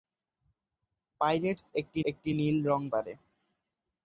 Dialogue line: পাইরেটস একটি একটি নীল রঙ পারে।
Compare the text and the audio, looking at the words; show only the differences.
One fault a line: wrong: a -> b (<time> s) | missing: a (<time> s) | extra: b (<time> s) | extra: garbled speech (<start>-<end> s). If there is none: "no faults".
no faults